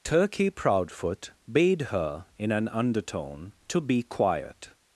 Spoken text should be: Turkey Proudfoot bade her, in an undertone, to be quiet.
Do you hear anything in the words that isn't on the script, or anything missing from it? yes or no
no